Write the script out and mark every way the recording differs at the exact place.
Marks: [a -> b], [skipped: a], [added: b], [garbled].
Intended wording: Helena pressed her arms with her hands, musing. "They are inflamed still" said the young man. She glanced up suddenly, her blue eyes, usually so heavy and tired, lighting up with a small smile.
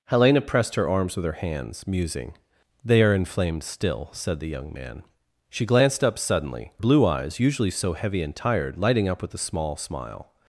Helena pressed her arms with her hands, musing. "They are inflamed still" said the young man. She glanced up suddenly, [skipped: her] blue eyes, usually so heavy and tired, lighting up with a small smile.